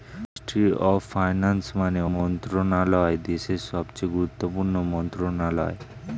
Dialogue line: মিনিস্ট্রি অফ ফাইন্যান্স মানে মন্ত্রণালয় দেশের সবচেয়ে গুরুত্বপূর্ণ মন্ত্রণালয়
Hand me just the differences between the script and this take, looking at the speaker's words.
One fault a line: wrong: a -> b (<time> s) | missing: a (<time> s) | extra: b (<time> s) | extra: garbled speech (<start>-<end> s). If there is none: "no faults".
no faults